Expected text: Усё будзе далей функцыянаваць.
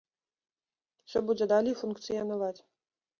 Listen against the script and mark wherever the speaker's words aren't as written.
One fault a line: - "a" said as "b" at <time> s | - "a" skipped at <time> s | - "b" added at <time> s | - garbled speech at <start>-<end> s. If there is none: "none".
none